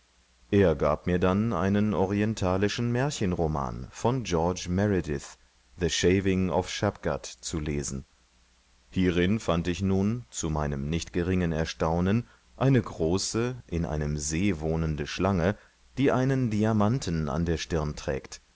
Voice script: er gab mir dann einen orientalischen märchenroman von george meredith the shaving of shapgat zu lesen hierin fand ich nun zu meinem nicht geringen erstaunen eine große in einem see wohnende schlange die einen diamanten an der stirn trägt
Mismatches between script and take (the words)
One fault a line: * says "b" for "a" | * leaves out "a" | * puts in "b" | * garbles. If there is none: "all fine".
all fine